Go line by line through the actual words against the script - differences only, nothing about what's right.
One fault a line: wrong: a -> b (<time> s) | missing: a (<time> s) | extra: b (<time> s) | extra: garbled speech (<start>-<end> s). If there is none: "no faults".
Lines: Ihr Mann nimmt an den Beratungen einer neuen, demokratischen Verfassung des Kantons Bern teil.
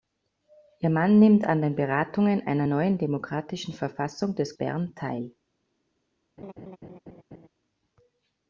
missing: Kantons (4.6 s)